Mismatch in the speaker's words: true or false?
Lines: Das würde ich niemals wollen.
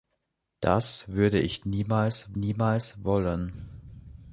true